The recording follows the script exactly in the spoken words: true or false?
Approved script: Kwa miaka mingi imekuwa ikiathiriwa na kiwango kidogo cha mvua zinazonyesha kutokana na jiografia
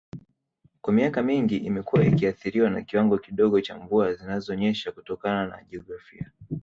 true